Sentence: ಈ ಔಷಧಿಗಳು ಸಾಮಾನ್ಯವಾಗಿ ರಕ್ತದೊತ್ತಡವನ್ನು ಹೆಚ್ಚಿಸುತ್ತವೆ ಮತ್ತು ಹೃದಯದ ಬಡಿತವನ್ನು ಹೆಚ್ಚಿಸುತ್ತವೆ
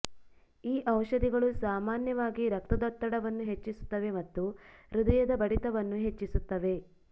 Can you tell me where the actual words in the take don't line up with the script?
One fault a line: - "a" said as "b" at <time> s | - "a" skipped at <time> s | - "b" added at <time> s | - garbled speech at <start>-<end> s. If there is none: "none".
none